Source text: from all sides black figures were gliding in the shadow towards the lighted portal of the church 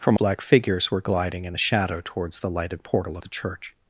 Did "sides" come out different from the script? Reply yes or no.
yes